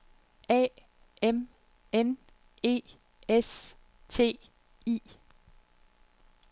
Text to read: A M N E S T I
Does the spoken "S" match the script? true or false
true